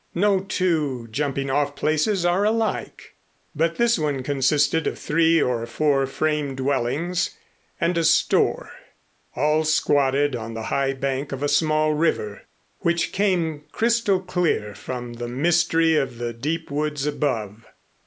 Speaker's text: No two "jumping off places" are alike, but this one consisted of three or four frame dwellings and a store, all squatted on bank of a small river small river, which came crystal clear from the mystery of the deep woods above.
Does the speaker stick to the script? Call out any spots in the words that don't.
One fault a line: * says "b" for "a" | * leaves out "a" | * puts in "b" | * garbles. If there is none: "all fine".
* puts in "the high"
* leaves out "small river"